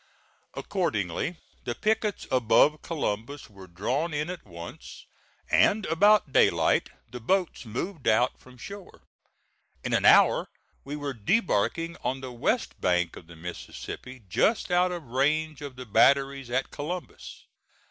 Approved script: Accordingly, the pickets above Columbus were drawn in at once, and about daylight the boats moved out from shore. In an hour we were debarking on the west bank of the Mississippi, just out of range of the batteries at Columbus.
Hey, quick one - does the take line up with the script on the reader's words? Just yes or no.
yes